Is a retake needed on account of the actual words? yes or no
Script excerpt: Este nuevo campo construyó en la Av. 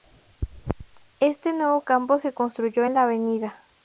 yes